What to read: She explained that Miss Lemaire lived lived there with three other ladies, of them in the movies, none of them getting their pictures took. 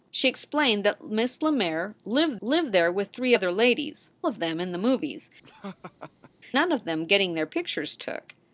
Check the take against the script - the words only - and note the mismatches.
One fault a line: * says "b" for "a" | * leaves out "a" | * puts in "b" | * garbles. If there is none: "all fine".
all fine